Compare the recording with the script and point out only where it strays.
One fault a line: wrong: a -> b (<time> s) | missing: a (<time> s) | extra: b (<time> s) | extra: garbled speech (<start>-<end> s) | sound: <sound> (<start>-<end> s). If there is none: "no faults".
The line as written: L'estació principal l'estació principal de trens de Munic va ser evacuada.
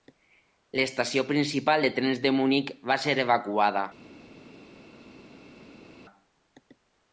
missing: l'estació principal (1.9 s)